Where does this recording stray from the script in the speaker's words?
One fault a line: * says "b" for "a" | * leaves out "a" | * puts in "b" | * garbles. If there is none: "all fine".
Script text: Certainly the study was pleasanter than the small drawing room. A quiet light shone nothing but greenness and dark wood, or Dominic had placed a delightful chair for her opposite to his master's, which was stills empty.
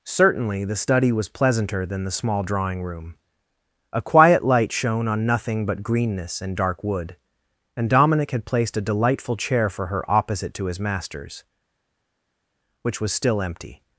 * puts in "on"
* says "and" for "or"
* says "still" for "stills"